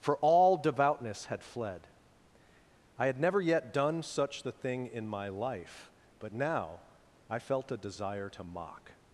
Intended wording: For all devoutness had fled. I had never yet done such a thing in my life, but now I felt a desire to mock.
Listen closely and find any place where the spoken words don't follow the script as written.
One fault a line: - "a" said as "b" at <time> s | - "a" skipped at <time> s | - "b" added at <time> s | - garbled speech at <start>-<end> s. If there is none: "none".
- "a" said as "the" at 4.4 s